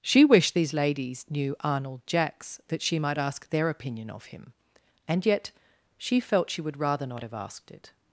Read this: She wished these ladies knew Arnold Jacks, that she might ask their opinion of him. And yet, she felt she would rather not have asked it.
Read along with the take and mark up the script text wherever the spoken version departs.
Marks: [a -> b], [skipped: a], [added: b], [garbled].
She wished these ladies knew Arnold Jacks, that she might ask their opinion of him. And yet, she felt she would rather not have asked it.